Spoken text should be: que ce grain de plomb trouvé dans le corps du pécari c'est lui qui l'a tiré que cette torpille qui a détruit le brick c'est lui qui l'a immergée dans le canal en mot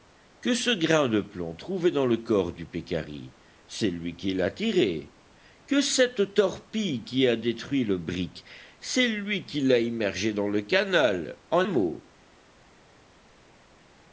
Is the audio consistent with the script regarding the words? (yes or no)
yes